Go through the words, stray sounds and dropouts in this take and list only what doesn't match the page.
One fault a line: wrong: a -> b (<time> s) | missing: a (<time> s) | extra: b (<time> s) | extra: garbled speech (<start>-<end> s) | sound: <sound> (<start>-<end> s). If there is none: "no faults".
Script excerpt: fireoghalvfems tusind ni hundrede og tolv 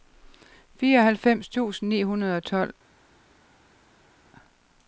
no faults